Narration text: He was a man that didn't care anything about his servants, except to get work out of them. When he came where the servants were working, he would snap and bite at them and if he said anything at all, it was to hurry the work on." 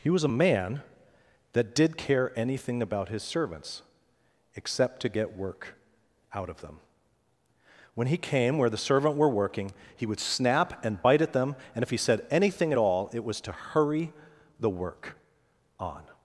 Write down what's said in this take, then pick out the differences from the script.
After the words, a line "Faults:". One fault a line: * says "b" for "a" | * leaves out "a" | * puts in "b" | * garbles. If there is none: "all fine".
He was a man that did care anything about his servants, except to get work out of them. When he came where the servant were working, he would snap and bite at them and if he said anything at all, it was to hurry the work on."
Faults:
* says "did" for "didn't"
* says "servant" for "servants"